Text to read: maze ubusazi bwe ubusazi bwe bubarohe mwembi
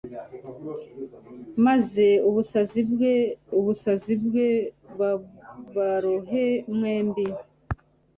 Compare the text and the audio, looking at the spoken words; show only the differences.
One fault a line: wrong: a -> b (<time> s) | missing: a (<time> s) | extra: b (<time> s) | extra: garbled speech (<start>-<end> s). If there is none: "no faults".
no faults